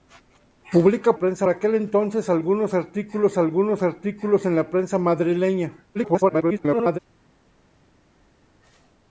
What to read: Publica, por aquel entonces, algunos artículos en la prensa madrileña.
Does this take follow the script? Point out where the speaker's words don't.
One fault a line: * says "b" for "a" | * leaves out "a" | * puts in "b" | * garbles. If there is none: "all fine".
* says "prensa" for "por"
* puts in "algunos artículos"
* garbles